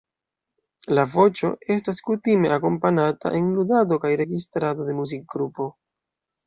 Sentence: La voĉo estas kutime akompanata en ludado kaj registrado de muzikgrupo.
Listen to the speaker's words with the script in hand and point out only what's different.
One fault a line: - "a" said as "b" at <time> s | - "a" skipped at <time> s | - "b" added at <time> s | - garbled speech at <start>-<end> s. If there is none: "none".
none